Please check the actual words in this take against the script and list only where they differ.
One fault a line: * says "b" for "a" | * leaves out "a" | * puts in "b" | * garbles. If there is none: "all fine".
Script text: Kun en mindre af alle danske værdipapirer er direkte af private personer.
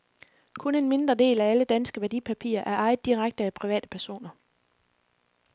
* puts in "del"
* puts in "ejet"